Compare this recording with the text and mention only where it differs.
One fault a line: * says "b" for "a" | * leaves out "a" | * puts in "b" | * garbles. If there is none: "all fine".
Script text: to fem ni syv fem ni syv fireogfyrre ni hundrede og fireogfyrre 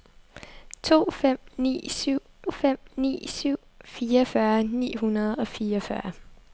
all fine